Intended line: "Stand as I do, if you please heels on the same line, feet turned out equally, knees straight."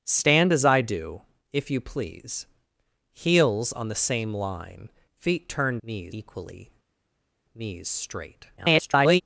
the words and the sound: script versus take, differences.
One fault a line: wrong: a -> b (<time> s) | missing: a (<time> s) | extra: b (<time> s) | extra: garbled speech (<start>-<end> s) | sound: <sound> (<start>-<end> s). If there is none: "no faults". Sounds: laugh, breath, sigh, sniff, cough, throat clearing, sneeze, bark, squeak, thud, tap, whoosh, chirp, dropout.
wrong: out -> knees (5.8 s)
extra: garbled speech (8.6-9.2 s)